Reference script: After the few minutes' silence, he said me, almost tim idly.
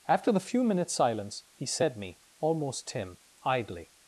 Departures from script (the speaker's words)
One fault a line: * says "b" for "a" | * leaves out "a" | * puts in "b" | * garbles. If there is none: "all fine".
all fine